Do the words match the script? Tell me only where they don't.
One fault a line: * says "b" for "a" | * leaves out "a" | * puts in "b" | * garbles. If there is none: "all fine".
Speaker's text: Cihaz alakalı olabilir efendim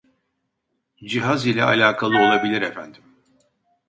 * puts in "ile"